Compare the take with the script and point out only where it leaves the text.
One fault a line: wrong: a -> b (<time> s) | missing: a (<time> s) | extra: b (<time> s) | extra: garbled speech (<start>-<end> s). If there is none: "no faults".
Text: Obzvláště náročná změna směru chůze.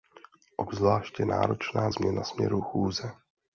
no faults